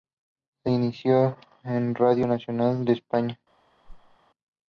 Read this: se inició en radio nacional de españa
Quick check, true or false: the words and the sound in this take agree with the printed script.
false